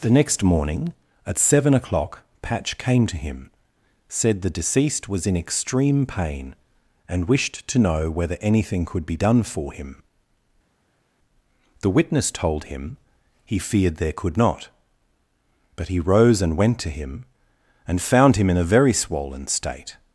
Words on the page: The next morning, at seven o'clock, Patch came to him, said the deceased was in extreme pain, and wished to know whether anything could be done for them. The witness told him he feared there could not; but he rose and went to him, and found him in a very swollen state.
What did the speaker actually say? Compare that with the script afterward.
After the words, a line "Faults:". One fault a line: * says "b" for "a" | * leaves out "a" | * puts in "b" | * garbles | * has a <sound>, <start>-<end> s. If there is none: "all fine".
The next morning, at seven o'clock, Patch came to him, said the deceased was in extreme pain, and wished to know whether anything could be done for him. The witness told him he feared there could not; but he rose and went to him, and found him in a very swollen state.
Faults:
* says "him" for "them"